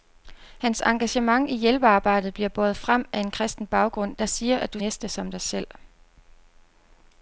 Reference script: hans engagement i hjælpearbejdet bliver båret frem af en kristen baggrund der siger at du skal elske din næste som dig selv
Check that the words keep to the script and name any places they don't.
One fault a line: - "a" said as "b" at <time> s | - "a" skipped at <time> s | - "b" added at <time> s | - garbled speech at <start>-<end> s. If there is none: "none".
- "skal elske din" skipped at 4.8 s